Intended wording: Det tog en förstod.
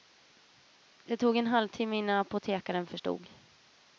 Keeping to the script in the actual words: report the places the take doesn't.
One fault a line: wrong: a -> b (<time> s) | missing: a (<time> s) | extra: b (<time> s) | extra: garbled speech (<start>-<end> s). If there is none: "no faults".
extra: halvtimme innan apotekaren (1.5 s)